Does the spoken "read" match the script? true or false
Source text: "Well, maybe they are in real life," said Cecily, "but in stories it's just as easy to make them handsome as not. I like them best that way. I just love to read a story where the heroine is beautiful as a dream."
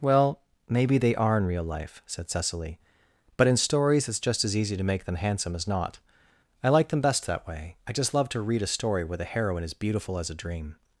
true